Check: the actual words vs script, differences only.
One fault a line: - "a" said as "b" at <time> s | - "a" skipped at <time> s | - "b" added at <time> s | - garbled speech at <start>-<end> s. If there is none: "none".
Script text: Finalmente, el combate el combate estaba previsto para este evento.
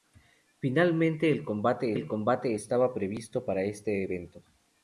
none